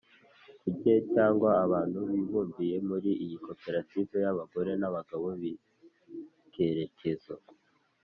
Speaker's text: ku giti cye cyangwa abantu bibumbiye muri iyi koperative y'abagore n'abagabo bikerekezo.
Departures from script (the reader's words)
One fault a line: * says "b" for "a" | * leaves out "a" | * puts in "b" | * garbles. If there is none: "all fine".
* leaves out "giti"